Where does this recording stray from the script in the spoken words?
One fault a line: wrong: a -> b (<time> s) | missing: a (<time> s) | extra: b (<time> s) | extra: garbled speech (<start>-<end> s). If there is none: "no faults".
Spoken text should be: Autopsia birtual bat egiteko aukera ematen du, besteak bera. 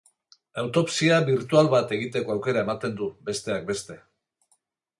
wrong: bera -> beste (3.7 s)